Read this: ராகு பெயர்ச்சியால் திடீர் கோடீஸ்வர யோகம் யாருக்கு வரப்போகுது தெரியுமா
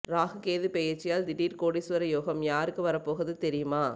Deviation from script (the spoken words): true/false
true